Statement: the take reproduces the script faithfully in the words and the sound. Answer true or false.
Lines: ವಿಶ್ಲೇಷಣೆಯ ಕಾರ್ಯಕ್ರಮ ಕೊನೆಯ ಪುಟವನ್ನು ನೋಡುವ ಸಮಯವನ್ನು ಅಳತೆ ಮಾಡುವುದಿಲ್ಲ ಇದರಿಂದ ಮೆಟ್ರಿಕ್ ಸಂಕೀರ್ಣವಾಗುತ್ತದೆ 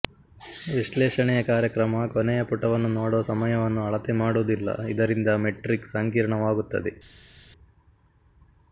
true